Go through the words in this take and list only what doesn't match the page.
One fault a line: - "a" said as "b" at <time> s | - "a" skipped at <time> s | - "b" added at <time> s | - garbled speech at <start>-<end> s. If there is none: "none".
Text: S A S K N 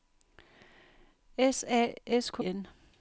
none